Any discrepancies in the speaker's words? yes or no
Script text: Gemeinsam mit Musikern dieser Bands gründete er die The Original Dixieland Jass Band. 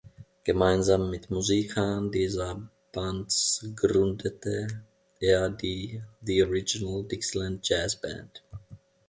no